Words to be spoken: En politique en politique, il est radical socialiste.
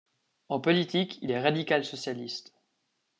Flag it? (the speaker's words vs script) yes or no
yes